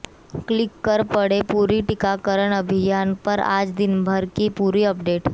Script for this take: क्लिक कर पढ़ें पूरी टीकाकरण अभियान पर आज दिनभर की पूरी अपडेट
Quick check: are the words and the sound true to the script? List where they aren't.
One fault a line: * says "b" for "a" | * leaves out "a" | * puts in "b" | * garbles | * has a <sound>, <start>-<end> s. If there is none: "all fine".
all fine